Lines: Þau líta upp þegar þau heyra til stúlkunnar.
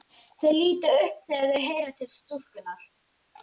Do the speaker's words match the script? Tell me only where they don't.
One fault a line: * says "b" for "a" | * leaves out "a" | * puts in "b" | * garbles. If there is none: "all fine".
all fine